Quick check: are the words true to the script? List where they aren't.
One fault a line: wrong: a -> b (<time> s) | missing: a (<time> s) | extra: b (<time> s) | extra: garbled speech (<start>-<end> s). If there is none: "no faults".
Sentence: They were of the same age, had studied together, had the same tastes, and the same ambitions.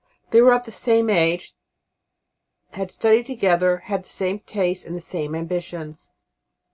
no faults